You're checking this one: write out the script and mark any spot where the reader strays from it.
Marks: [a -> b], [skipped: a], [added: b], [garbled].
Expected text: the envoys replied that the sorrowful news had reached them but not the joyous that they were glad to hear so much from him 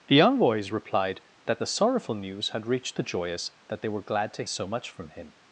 the envoys replied that the sorrowful news had reached [skipped: them but not] the joyous that they were glad to [skipped: hear] so much from him